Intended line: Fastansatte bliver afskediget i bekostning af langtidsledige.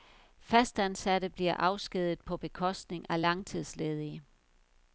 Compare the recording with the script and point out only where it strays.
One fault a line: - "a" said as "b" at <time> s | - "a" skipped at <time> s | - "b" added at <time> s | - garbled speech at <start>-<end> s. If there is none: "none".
- "i" said as "på" at 2.2 s